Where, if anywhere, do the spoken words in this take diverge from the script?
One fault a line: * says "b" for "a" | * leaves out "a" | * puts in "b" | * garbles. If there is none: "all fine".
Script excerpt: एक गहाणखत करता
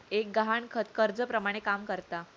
* puts in "कर्जाप्रमाणे काम"